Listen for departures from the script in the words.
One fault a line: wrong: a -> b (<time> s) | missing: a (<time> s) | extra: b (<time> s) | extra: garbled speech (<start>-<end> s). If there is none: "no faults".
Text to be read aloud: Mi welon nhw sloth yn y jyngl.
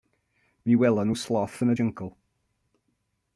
no faults